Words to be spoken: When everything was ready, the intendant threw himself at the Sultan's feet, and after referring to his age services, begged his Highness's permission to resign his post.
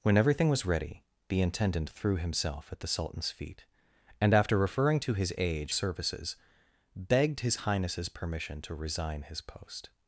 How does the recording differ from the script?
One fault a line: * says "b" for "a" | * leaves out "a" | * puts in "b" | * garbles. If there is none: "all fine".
all fine